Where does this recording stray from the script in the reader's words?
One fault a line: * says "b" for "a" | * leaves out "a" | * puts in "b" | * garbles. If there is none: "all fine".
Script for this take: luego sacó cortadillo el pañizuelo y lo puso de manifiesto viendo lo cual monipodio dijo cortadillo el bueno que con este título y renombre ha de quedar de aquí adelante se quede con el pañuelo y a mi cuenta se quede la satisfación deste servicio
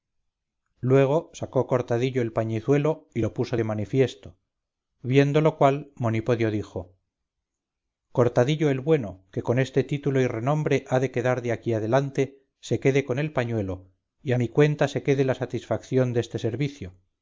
all fine